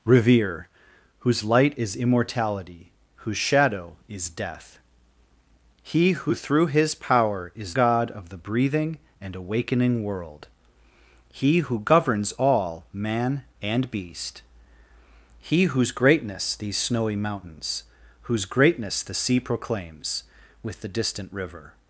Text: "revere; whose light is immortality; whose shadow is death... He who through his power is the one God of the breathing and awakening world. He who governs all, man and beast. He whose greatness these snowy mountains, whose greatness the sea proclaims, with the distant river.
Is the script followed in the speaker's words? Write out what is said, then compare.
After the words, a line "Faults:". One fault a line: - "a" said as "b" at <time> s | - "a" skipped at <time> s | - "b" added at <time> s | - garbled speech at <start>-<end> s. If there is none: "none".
"revere; whose light is immortality; whose shadow is death... He who through his power is God of the breathing and awakening world. He who governs all, man and beast. He whose greatness these snowy mountains, whose greatness the sea proclaims, with the distant river.
Faults:
- "the one" skipped at 7.8 s